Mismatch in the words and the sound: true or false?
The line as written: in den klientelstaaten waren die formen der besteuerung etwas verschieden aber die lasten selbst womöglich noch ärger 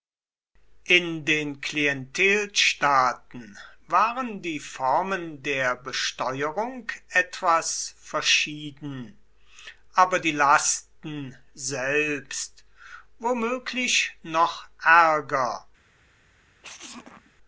true